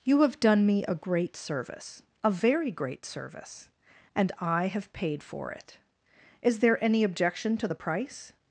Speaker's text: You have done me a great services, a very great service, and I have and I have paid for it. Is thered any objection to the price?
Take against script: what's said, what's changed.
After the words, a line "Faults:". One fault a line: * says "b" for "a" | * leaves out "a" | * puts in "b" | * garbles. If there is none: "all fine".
You have done me a great service, a very great service, and I have paid for it. Is there any objection to the price?
Faults:
* says "service" for "services"
* leaves out "and I have"
* says "there" for "thered"